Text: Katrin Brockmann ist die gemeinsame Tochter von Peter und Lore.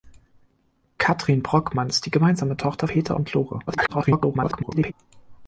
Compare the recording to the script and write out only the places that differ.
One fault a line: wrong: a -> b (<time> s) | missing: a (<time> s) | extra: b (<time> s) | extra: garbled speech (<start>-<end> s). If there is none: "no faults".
missing: von (2.9 s)
extra: garbled speech (3.7-4.9 s)